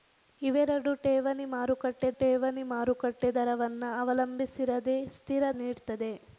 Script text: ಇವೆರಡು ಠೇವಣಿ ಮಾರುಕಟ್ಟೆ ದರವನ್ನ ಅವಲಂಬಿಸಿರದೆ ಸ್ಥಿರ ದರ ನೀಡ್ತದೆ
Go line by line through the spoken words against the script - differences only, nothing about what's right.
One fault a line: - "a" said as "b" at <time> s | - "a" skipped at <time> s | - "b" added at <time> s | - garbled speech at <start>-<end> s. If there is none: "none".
- "ಠೇವಣಿ ಮಾರುಕಟ್ಟೆ" added at 2.2 s
- "ದರ" skipped at 5.4 s